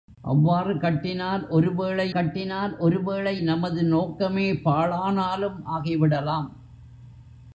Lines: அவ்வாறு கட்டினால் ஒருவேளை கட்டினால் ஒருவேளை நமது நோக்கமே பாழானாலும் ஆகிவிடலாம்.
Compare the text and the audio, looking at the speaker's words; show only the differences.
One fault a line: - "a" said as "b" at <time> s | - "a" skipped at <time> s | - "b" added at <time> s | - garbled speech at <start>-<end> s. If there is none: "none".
none